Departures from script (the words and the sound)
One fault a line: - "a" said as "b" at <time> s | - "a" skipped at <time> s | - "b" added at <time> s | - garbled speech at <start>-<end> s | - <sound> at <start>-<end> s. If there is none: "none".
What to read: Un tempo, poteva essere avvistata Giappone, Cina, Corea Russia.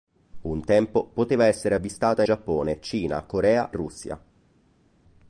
none